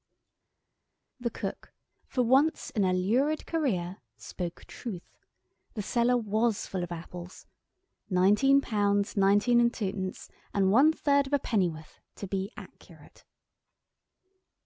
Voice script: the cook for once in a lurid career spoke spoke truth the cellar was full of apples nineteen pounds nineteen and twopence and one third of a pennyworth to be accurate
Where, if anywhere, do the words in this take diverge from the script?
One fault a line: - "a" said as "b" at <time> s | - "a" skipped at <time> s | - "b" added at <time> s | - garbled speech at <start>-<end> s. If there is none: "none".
- "spoke" skipped at 4.6 s